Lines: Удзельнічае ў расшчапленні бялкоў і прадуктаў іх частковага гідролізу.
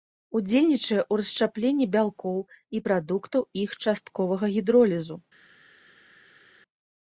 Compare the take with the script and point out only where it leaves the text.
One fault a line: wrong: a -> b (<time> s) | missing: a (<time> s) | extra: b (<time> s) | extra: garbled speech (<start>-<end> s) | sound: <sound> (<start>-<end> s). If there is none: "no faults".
no faults